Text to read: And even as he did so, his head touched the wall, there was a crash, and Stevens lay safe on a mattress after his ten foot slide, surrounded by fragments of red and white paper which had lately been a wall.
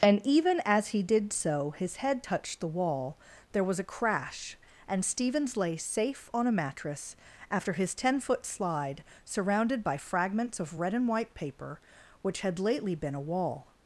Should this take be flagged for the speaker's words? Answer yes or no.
no